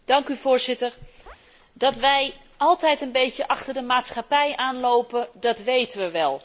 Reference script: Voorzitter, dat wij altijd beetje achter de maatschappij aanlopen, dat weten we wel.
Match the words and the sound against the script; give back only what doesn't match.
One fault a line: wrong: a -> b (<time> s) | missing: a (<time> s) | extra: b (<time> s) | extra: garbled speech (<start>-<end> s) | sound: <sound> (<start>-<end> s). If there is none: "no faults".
sound: chirp (1.3-1.4 s)
extra: een (3.0 s)